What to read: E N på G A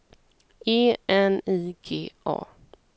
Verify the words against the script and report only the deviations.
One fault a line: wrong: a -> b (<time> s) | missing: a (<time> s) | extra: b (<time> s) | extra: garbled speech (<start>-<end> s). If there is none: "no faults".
wrong: på -> I (1.4 s)